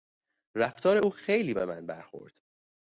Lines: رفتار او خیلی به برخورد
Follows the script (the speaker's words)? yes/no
no